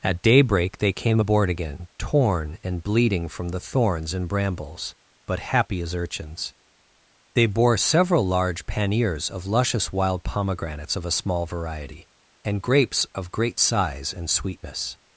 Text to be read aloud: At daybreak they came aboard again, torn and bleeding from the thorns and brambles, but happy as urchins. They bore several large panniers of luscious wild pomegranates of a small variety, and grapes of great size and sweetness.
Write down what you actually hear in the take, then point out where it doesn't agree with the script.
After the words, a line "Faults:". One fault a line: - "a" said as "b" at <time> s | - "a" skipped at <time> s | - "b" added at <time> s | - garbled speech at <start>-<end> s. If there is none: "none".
At daybreak they came aboard again, torn and bleeding from the thorns and brambles, but happy as urchins. They bore several large panniers of luscious wild pomegranates of a small variety, and grapes of great size and sweetness.
Faults:
none